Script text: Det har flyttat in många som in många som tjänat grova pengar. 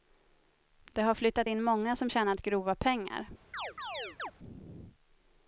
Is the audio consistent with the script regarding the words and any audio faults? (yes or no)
no